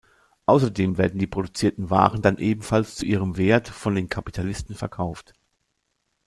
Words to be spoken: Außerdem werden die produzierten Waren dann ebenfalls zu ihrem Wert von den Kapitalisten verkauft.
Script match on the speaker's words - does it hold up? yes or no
yes